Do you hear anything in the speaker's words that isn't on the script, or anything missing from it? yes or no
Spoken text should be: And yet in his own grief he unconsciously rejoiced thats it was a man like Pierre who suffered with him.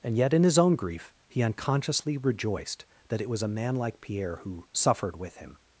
yes